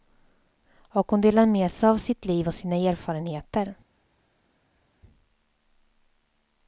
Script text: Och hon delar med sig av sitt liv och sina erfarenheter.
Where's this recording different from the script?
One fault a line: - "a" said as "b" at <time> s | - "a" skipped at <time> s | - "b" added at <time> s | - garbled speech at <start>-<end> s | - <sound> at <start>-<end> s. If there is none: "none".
none